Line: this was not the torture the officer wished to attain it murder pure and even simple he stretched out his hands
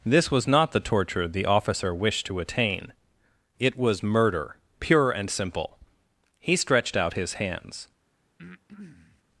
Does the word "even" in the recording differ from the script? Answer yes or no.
yes